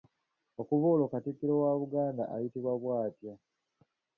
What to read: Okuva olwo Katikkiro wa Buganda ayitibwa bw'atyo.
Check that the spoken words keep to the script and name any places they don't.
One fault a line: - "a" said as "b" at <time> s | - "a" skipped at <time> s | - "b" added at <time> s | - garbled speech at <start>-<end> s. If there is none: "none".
none